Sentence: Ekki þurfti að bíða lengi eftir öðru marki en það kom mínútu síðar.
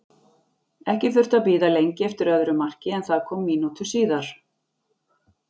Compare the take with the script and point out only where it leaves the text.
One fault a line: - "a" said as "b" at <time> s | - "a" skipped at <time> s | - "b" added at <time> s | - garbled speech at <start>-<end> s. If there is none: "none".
none